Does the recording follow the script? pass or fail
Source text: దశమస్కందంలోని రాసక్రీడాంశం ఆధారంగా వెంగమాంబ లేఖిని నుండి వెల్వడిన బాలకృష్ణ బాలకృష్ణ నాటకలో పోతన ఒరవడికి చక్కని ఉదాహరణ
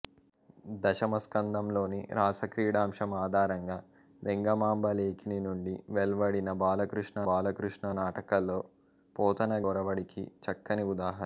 pass